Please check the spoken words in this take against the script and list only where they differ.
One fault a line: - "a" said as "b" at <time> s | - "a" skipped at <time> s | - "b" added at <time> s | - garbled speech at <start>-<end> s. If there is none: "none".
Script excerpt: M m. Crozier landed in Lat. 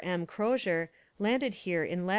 - "m" skipped at 0.2 s
- "here" added at 1.5 s